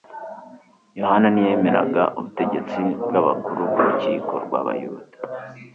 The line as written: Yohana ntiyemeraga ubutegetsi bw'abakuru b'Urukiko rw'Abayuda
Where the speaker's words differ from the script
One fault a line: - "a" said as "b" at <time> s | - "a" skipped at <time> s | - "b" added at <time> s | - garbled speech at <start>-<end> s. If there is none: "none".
none